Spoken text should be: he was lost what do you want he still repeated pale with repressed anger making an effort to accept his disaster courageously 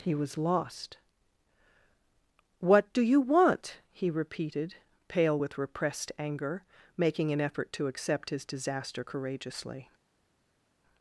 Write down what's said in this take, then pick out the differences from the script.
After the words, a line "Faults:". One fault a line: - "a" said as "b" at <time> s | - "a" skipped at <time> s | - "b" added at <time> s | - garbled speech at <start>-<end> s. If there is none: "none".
he was lost what do you want he repeated pale with repressed anger making an effort to accept his disaster courageously
Faults:
- "still" skipped at 4.1 s